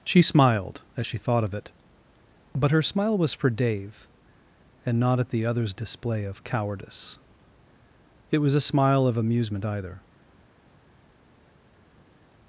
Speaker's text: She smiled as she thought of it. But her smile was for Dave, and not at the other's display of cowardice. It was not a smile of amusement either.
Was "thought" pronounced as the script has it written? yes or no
yes